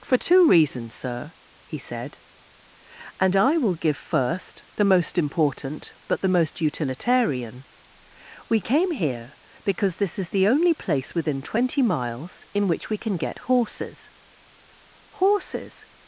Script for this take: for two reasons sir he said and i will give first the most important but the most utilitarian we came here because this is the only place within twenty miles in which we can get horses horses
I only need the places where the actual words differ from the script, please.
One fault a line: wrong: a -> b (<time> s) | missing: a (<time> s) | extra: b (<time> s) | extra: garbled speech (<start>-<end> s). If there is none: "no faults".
no faults